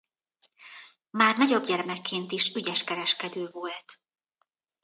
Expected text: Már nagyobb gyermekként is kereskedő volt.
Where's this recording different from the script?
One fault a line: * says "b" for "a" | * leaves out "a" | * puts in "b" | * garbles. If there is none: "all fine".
* puts in "ügyes"